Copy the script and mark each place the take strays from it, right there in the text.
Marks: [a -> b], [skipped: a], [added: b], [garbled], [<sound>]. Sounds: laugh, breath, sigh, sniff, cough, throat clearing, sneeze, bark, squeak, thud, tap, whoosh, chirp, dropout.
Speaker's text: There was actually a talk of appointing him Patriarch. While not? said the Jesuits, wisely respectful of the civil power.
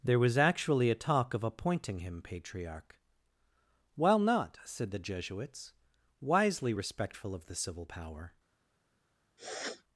There was actually a talk of appointing him Patriarch. While not? said the Jesuits, wisely respectful of the civil power. [sniff]